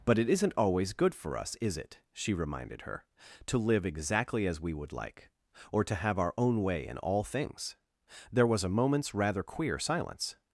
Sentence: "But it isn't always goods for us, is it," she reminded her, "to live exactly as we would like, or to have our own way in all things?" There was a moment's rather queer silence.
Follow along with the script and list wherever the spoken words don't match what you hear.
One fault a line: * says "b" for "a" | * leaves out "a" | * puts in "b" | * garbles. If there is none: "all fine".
* says "good" for "goods"